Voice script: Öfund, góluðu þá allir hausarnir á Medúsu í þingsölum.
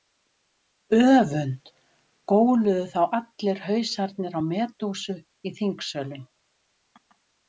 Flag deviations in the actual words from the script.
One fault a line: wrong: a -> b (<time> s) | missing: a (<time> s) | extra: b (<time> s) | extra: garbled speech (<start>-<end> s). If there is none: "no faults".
no faults